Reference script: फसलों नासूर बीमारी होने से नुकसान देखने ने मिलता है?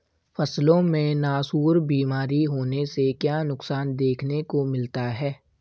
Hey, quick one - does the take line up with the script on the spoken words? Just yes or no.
no